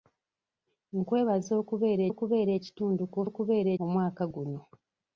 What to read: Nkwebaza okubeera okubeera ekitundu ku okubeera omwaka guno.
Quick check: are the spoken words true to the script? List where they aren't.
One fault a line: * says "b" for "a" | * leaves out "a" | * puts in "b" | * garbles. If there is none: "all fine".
all fine